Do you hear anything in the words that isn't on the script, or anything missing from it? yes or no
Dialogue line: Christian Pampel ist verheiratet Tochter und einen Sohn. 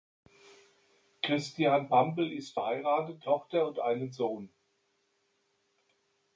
no